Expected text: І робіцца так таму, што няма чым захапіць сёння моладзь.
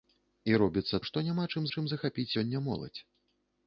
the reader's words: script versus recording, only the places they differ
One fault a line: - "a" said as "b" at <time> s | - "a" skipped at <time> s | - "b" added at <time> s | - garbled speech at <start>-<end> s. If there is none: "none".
- "так таму" skipped at 1.0 s
- "чым" added at 1.7 s